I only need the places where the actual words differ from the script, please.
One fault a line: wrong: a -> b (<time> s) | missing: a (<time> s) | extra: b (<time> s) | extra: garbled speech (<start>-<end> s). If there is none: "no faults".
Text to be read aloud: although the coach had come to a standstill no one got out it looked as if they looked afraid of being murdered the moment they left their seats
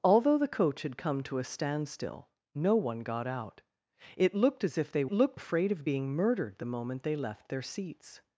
no faults